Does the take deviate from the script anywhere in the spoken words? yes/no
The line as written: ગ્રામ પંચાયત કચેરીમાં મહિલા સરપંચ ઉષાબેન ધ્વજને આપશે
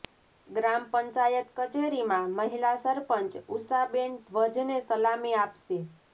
yes